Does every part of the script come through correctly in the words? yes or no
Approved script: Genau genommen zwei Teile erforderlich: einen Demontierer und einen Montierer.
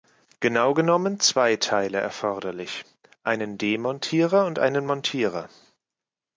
yes